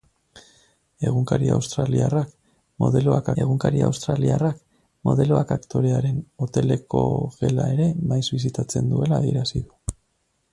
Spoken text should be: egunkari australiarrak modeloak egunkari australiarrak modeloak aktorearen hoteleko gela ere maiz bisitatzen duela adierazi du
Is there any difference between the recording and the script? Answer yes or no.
no